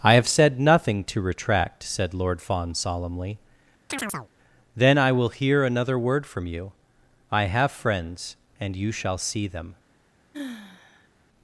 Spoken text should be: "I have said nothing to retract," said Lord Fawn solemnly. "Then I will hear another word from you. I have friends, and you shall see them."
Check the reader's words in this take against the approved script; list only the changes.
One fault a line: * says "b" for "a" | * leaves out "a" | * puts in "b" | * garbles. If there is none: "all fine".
all fine